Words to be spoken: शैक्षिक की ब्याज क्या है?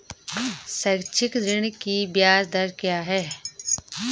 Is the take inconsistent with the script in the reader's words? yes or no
yes